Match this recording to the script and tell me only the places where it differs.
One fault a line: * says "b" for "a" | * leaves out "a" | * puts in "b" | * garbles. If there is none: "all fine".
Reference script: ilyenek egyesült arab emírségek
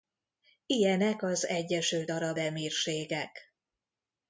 * puts in "az"